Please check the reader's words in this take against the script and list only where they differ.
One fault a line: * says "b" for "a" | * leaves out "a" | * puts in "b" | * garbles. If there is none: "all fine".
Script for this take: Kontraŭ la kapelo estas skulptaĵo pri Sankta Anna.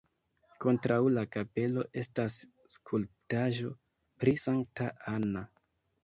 all fine